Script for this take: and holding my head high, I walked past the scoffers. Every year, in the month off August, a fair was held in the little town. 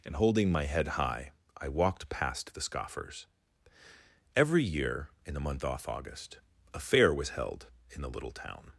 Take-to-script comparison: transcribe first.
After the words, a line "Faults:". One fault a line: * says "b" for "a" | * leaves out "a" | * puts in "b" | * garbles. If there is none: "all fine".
and holding my head high, I walked past the scoffers. Every year, in the month off August, a fair was held in the little town.
Faults:
all fine